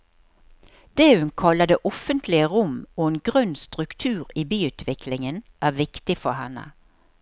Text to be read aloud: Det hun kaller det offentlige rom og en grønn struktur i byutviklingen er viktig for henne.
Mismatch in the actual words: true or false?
false